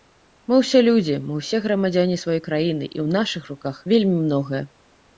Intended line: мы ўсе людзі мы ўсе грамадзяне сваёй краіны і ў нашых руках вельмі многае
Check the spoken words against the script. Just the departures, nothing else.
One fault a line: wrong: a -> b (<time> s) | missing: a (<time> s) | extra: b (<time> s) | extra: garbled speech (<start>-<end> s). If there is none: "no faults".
no faults